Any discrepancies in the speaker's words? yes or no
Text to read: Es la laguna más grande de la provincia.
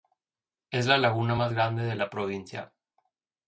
no